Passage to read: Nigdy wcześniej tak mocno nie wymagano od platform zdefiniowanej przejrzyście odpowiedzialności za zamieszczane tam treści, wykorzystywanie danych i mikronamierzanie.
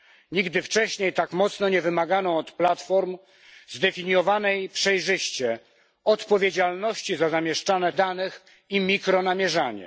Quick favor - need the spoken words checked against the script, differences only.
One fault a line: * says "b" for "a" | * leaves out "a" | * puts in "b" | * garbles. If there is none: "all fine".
* leaves out "tam treści wykorzystywanie"